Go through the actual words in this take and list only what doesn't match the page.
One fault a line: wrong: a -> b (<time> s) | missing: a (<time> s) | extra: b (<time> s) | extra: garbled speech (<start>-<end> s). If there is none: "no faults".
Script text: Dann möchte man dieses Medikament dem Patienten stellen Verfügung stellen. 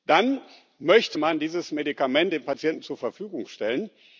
wrong: stellen -> zur (2.8 s)